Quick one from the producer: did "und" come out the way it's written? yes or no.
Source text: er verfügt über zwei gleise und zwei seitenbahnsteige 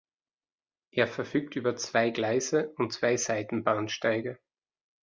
yes